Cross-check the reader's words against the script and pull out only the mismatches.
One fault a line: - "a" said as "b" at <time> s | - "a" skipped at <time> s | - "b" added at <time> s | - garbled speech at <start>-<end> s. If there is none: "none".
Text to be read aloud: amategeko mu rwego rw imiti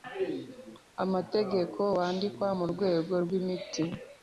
- "wandikwa" added at 2.0 s